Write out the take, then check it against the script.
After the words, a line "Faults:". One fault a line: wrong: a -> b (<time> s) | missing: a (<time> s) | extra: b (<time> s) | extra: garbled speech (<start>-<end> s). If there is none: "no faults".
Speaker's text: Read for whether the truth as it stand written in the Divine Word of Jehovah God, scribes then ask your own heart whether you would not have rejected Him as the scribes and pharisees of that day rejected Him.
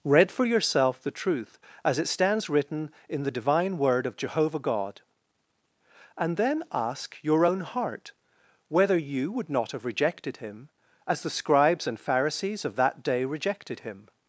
Read for yourself the truth as it stands written in the Divine Word of Jehovah God, and then ask your own heart whether you would not have rejected Him as the scribes and pharisees of that day rejected Him.
Faults:
wrong: whether -> yourself (0.5 s)
wrong: stand -> stands (2.1 s)
wrong: scribes -> and (6.2 s)